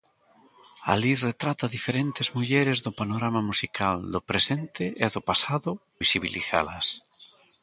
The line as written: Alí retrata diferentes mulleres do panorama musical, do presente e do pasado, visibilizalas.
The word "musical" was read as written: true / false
true